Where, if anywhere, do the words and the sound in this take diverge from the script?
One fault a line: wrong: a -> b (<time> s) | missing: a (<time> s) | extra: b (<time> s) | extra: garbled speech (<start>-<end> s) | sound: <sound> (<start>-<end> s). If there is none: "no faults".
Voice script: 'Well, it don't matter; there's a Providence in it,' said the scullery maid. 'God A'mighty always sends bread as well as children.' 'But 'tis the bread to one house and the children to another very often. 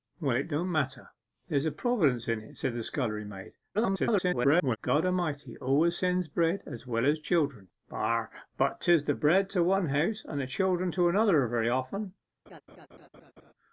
extra: garbled speech (3.7-4.8 s)
sound: laugh (12.5-13.5 s)